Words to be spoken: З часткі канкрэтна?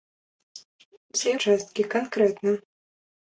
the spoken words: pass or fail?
pass